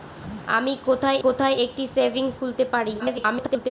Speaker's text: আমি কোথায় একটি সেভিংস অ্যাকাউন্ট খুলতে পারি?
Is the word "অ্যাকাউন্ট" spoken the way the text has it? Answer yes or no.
no